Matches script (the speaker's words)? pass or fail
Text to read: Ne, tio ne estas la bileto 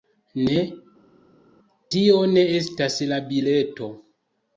pass